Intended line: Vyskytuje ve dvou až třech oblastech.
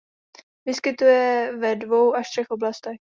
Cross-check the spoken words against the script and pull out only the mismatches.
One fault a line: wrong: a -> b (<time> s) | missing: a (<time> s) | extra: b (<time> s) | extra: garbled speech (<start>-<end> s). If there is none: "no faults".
no faults